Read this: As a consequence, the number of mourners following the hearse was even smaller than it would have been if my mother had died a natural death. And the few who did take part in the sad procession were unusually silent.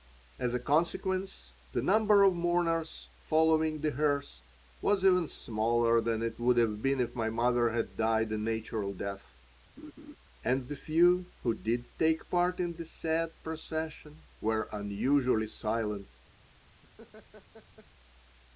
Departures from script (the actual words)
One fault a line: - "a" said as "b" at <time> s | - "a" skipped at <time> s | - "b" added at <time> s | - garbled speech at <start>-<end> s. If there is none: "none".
none